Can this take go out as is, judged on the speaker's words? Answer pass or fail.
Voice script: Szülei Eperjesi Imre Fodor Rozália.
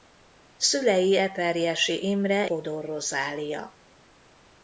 pass